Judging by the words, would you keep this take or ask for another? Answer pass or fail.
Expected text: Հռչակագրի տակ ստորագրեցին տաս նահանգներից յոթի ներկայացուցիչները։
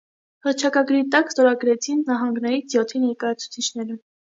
fail